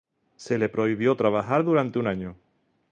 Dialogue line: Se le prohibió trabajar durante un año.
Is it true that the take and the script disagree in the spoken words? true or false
false